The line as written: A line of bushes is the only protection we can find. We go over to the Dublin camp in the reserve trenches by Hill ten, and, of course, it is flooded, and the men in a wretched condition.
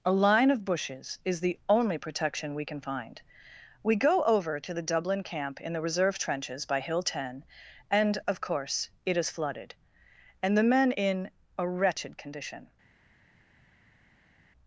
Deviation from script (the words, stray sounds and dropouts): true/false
false